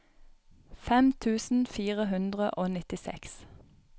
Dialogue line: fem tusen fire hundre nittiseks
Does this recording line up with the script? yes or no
no